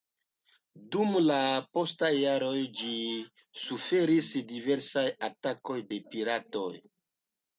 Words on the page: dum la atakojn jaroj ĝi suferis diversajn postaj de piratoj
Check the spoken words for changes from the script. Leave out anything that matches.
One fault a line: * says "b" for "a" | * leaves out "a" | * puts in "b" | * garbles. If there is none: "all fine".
* says "postaj" for "atakojn"
* says "atakojn" for "postaj"